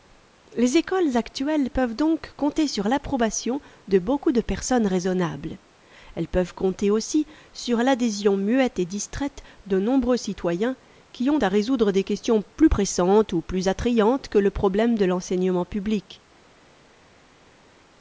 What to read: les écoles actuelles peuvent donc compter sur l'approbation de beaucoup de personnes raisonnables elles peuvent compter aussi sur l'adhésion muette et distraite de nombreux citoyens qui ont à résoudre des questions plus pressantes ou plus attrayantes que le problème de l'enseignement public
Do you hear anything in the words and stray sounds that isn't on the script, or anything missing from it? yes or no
no